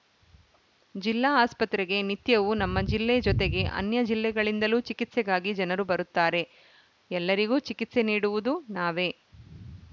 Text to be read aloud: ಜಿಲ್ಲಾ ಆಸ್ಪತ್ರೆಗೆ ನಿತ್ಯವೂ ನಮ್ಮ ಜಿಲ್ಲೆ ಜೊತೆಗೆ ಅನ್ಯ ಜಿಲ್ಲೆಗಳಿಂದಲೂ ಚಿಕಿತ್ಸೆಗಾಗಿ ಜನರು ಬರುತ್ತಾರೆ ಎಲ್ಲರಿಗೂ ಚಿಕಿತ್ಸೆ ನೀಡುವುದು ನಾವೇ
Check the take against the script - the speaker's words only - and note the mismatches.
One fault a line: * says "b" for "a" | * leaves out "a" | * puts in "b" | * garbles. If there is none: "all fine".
all fine